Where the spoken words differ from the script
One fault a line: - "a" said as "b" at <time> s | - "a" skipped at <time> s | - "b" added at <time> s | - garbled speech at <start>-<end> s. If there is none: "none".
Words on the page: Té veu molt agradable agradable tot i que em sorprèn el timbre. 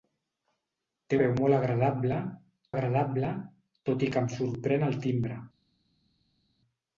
none